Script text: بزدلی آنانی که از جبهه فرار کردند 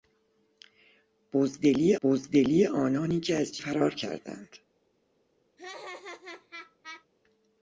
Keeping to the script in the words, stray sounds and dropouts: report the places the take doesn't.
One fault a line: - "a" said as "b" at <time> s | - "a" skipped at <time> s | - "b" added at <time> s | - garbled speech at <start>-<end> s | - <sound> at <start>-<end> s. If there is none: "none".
- "بزدلی" added at 2.0 s
- "جبهه" skipped at 3.6 s
- laugh at 5.6-7.1 s